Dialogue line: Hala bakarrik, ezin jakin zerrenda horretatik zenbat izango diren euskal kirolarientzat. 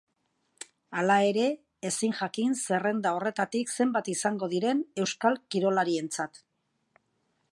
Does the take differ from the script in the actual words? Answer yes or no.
yes